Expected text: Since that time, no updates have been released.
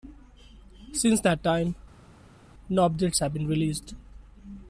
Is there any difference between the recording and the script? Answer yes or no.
no